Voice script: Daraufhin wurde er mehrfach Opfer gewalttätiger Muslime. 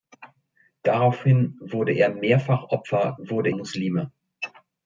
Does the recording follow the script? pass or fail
fail